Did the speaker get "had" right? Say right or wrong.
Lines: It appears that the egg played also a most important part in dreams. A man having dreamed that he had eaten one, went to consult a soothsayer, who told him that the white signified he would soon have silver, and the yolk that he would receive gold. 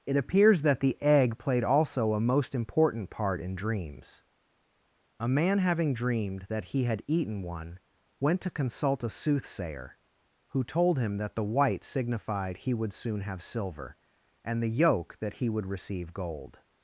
right